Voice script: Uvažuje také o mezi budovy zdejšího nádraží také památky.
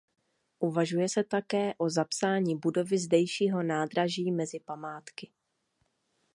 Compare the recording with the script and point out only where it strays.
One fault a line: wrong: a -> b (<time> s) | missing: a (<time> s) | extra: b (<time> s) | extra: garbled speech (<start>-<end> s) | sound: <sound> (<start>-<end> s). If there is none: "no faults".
extra: se (1.1 s)
wrong: mezi -> zapsání (1.9 s)
wrong: také -> mezi (4.3 s)